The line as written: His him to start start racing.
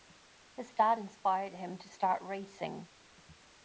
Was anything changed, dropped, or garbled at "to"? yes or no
no